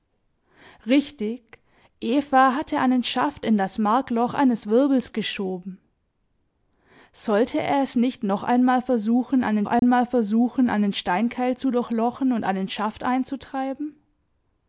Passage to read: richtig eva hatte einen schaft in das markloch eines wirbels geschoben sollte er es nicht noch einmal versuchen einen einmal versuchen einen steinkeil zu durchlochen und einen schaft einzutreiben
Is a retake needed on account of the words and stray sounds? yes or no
yes